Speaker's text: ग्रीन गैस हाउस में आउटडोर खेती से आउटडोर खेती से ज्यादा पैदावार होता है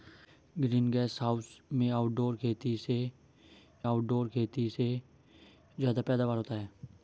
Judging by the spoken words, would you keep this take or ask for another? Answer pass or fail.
pass